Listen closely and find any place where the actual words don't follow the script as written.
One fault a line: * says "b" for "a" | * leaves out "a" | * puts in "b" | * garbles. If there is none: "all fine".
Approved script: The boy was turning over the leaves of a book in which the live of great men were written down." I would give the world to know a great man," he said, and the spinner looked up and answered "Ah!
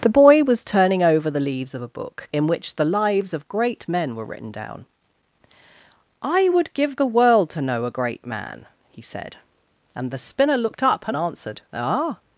* says "lives" for "live"